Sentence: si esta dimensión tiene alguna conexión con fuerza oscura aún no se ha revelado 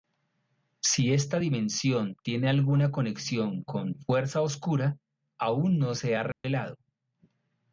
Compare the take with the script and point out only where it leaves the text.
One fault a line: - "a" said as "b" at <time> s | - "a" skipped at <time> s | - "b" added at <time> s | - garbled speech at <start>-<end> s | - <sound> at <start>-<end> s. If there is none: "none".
- dropout at 6.3-6.4 s